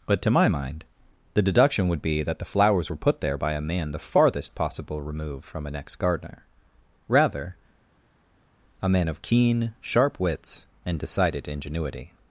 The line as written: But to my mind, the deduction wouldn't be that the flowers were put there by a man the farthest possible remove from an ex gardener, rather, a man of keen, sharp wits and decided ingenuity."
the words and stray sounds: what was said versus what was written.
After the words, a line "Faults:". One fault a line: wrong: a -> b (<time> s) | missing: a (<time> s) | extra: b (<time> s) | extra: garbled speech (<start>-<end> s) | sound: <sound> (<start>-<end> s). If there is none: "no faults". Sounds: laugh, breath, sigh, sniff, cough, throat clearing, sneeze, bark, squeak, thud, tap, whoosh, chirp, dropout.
But to my mind, the deduction would be that the flowers were put there by a man the farthest possible remove from an ex gardener, rather, a man of keen, sharp wits and decided ingenuity."
Faults:
wrong: wouldn't -> would (1.9 s)